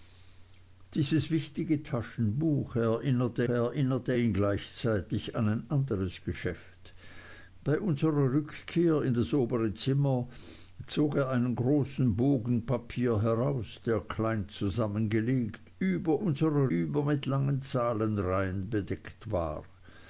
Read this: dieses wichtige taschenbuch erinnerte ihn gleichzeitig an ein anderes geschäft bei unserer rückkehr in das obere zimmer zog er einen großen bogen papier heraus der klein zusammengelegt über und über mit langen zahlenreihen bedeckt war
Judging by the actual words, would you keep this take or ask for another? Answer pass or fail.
fail